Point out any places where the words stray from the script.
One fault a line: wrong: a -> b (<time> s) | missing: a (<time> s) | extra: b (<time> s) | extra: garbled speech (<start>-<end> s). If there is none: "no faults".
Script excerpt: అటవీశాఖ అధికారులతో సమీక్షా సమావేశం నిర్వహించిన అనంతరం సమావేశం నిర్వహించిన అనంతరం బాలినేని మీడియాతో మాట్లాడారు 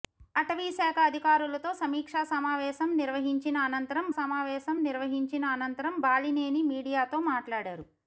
no faults